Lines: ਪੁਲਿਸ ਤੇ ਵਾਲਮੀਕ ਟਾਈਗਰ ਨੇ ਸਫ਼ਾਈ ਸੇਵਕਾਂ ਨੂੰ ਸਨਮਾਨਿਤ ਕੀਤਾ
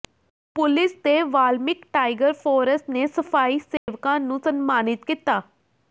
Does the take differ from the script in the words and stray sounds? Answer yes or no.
yes